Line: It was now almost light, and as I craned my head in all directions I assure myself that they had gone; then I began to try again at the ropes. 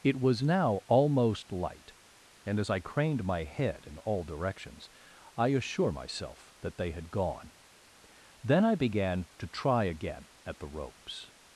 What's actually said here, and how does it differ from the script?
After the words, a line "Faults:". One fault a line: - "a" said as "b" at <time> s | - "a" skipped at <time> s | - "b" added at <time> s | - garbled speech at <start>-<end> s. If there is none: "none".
It was now almost light, and as I craned my head in all directions I assure myself that they had gone; then I began to try again at the ropes.
Faults:
none